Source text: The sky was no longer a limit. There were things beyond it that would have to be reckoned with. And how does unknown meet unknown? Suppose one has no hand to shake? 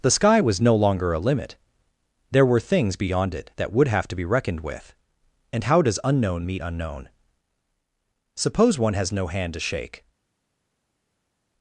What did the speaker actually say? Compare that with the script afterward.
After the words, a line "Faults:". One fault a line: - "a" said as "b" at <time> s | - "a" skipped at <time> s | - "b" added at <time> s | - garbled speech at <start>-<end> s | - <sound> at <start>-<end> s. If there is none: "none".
The sky was no longer a limit. There were things beyond it that would have to be reckoned with. And how does unknown meet unknown? Suppose one has no hand to shake?
Faults:
none